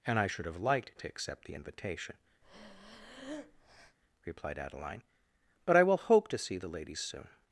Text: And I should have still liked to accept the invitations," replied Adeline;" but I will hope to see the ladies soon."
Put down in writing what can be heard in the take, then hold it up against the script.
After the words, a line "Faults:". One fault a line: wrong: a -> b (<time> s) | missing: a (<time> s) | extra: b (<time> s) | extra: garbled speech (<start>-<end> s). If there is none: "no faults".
And I should have liked to accept the invitation," replied Adeline;" but I will hope to see the ladies soon."
Faults:
missing: still (0.6 s)
wrong: invitations -> invitation (1.5 s)